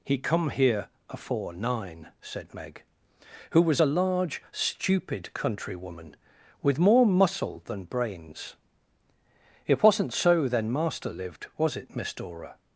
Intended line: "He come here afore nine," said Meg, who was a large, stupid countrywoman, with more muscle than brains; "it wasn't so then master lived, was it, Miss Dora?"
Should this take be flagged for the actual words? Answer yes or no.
no